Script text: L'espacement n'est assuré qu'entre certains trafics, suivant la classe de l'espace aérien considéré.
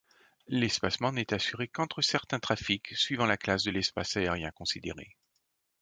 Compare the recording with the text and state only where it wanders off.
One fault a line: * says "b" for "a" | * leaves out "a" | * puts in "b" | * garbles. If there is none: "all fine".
all fine